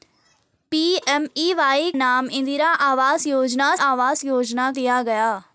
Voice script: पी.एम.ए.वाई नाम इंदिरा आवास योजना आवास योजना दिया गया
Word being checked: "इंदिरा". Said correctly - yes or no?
yes